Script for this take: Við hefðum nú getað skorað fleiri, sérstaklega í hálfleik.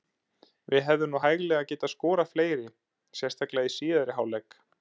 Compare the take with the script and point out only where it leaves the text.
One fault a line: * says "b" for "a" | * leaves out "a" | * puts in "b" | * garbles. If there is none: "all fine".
* puts in "hæglega"
* puts in "síðari"